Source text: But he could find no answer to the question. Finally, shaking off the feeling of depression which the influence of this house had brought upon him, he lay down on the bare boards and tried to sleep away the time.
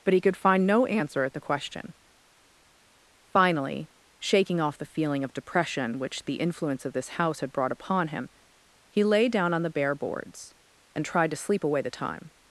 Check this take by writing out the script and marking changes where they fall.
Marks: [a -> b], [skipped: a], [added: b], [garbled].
But he could find no answer [to -> at] the question. Finally, shaking off the feeling of depression which the influence of this house had brought upon him, he lay down on the bare boards and tried to sleep away the time.